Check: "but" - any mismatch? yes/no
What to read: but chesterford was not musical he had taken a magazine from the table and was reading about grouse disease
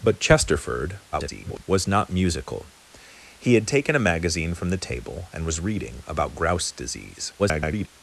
no